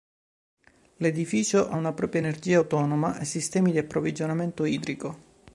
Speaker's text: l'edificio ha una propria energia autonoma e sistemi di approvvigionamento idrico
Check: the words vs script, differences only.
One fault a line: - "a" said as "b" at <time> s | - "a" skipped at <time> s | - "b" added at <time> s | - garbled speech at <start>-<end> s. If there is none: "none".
none